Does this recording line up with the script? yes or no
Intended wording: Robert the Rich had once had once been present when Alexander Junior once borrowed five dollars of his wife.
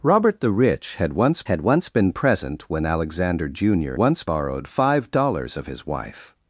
yes